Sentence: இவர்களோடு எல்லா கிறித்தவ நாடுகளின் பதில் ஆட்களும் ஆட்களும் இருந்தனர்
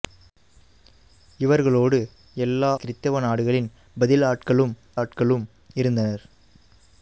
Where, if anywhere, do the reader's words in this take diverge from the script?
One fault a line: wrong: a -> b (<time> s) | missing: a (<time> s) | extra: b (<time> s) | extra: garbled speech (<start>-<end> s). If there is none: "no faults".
no faults